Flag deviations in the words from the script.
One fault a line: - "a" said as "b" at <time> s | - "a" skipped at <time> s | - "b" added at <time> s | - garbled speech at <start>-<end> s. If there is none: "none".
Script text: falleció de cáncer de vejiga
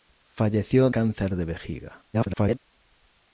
- "de" skipped at 0.9 s
- garbled speech at 2.1-2.6 s